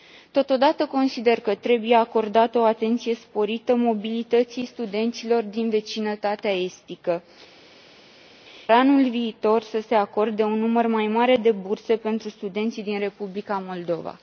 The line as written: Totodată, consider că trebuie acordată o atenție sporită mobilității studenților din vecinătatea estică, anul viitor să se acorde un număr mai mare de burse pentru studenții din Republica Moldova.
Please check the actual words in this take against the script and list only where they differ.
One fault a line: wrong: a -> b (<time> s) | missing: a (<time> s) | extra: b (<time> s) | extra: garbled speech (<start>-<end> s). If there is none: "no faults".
no faults